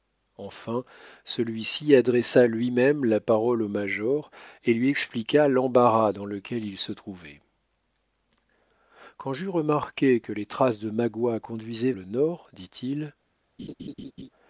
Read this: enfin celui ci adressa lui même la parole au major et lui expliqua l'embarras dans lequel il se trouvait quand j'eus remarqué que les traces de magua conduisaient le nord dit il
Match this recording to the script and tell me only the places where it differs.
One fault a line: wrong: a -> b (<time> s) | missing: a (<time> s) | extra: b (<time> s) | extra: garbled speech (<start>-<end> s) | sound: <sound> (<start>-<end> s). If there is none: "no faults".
sound: laugh (13.6-14.3 s)